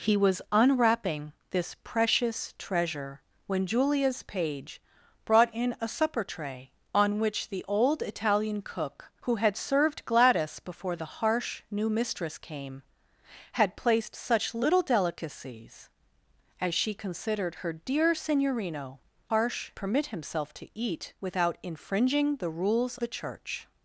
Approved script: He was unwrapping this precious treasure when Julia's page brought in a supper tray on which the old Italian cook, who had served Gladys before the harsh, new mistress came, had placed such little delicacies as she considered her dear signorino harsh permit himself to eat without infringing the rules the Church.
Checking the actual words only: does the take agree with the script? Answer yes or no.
yes